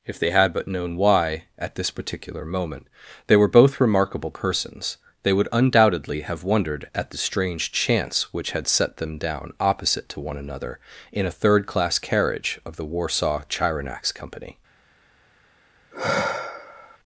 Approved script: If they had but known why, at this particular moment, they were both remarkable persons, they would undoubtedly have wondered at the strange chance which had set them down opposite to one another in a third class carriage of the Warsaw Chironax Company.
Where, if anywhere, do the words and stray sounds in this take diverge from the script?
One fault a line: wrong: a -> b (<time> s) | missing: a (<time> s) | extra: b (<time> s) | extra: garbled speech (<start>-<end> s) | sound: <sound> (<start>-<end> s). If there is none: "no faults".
sound: sigh (15.9-17.0 s)